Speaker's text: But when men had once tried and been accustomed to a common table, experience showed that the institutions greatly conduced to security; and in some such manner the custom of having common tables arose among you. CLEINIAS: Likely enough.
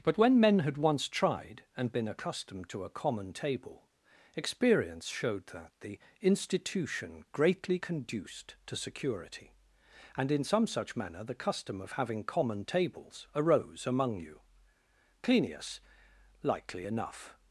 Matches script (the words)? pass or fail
fail